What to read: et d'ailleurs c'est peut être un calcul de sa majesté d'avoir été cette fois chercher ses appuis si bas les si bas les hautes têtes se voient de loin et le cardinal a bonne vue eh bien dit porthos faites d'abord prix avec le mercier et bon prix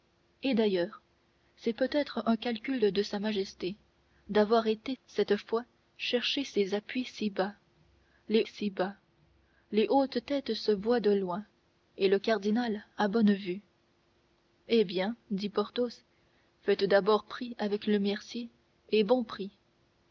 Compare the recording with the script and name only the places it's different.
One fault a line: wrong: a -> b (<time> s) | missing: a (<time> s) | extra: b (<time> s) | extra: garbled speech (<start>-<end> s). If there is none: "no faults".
no faults